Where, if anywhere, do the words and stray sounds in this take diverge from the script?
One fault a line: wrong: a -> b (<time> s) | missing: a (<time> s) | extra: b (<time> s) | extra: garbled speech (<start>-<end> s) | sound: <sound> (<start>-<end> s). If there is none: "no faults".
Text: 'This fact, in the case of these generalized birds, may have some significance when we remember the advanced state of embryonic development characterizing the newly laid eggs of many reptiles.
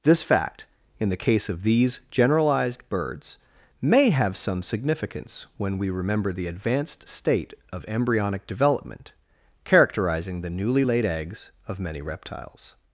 no faults